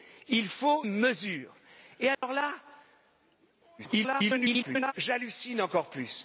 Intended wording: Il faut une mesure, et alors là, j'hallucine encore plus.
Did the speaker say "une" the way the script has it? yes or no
no